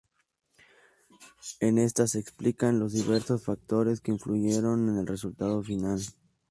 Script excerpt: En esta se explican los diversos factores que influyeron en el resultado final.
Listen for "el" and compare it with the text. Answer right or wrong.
right